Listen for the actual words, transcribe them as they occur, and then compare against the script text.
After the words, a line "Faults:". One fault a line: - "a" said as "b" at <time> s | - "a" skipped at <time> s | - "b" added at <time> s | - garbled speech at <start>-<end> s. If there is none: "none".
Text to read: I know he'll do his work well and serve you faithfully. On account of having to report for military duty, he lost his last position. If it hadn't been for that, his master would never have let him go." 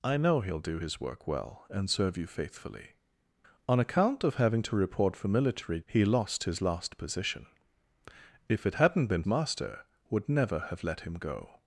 I know he'll do his work well and serve you faithfully. On account of having to report for military he lost his last position. If it hadn't been master would never have let him go."
Faults:
- "duty" skipped at 5.8 s
- "for that his" skipped at 9.2 s